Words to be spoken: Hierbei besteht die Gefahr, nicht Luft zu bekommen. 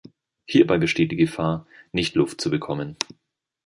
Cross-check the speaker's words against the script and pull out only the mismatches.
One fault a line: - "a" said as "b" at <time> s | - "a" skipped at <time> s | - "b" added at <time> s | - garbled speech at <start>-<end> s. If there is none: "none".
none